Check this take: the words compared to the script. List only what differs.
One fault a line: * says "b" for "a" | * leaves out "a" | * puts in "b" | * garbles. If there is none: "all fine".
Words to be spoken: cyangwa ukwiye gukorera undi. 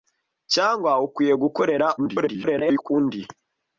* garbles